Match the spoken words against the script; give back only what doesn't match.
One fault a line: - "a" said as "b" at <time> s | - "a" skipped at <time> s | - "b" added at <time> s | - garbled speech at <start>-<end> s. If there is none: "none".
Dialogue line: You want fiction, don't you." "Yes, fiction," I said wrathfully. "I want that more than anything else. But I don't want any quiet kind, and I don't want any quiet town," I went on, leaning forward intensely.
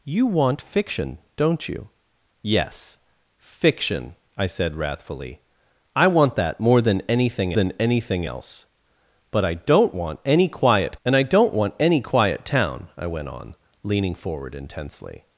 - "than anything" added at 7.5 s
- "kind" skipped at 11.0 s